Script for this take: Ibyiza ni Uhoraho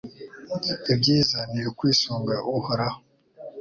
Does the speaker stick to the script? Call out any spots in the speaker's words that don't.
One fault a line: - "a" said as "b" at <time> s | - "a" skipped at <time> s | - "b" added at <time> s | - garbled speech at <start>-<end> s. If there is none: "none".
- "ukwisunga" added at 1.7 s